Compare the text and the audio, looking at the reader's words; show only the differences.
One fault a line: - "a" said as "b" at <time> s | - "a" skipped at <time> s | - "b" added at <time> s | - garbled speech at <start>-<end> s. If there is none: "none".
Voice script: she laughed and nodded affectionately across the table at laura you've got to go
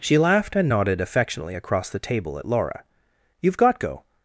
- "to" skipped at 3.8 s